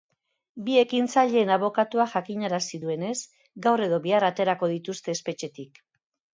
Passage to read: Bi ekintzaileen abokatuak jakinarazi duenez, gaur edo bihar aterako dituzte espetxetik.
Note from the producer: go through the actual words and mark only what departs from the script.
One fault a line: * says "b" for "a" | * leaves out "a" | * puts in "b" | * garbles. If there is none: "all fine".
all fine